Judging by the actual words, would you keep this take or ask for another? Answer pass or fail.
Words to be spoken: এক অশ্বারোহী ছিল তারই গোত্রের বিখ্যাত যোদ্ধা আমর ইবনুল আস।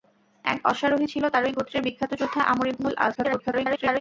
fail